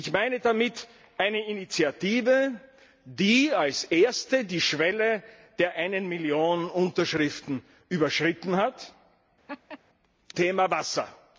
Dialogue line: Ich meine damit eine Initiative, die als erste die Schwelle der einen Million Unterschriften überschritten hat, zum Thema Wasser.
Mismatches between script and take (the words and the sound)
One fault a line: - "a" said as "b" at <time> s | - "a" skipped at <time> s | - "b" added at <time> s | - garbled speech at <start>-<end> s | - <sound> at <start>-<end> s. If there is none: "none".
- "zum" skipped at 8.9 s
- laugh at 9.5-9.8 s